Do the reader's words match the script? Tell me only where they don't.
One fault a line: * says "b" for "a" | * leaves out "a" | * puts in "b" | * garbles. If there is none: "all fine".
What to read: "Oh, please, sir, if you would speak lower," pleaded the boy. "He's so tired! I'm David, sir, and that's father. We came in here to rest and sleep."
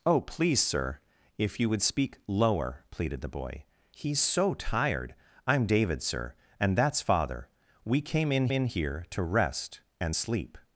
* puts in "in"